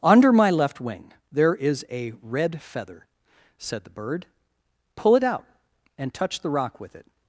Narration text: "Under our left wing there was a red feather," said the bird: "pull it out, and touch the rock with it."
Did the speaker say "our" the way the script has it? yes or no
no